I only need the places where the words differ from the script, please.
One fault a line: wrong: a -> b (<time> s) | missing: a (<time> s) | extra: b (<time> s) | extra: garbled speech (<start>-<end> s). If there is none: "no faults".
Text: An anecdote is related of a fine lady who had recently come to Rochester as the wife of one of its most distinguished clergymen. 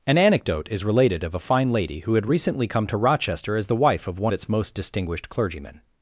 missing: of (4.3 s)